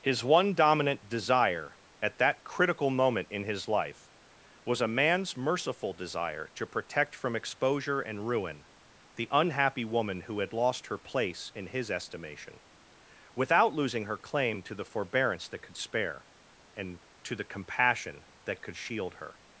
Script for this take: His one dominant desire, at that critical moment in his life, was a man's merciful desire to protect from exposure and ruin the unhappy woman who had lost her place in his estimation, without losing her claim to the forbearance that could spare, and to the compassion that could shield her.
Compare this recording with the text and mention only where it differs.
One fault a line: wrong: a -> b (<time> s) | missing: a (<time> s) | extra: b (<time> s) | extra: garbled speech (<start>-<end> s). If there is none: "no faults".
no faults